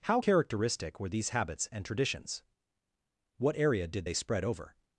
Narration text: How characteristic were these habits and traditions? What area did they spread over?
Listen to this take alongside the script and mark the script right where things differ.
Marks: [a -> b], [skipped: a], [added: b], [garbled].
How characteristic were these habits and traditions? What area did they spread over?